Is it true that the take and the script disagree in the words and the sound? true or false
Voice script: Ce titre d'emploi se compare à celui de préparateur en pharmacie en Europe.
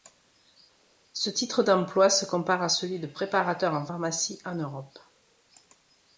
false